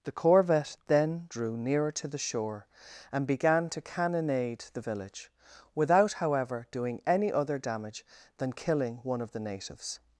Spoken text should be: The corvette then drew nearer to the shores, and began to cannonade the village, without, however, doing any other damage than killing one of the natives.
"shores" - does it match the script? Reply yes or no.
no